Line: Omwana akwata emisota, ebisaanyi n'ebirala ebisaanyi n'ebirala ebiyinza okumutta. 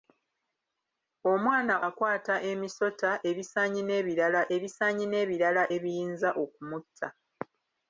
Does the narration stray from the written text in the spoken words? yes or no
no